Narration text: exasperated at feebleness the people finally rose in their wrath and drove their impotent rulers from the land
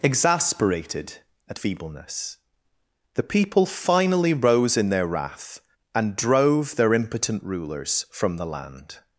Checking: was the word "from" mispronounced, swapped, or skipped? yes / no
no